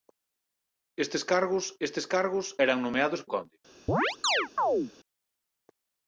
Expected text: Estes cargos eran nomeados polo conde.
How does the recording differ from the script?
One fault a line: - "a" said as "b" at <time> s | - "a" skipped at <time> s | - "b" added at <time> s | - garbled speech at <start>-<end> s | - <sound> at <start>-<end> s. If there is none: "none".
- "estes cargos" added at 1.9 s
- "polo" skipped at 3.2 s
- chirp at 3.9-4.9 s